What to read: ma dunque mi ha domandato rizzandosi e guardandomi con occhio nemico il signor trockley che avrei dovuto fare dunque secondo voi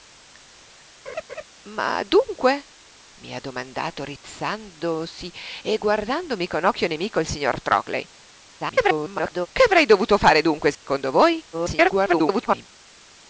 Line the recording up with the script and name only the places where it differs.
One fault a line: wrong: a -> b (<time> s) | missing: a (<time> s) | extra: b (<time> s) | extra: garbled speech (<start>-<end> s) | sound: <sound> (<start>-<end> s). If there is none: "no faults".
sound: laugh (1.1-1.4 s)
extra: garbled speech (8.6-9.5 s)
sound: dropout (10.7-10.8 s)
extra: garbled speech (11.5-12.7 s)